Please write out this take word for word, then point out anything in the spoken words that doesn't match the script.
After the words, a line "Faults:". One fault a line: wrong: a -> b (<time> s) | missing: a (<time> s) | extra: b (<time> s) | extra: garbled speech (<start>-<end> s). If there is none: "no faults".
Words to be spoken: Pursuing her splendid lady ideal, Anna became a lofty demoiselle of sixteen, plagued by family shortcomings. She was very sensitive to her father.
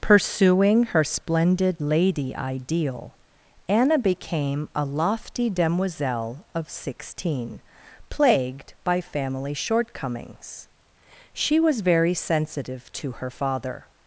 Pursuing her splendid lady ideal, Anna became a lofty demoiselle of sixteen, plagued by family shortcomings. She was very sensitive to her father.
Faults:
no faults